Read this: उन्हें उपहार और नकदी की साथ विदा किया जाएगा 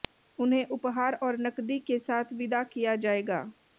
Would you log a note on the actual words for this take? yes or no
yes